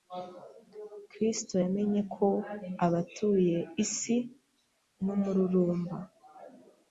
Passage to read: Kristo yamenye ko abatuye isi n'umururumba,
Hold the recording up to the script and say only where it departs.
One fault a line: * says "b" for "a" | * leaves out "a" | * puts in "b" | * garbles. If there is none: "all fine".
all fine